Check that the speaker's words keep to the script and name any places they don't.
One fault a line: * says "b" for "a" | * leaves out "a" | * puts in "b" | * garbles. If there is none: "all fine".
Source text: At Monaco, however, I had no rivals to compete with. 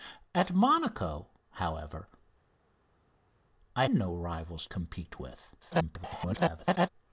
* leaves out "had"
* leaves out "to"
* garbles